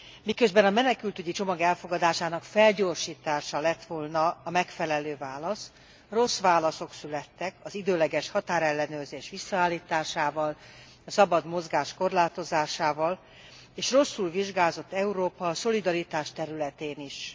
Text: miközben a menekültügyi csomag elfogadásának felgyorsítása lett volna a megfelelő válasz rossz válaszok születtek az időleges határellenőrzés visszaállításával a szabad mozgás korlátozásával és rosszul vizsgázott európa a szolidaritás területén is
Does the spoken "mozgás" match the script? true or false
true